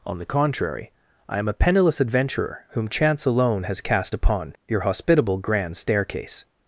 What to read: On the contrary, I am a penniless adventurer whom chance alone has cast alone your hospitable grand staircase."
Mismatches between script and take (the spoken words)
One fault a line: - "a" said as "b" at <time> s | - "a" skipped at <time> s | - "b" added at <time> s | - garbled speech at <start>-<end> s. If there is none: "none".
- "alone" said as "upon" at 4.1 s